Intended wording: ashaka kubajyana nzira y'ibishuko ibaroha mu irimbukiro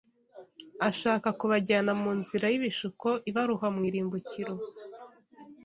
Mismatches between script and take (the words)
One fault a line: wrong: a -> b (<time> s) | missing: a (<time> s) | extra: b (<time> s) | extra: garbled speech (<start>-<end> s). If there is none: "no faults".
extra: mu (2.0 s)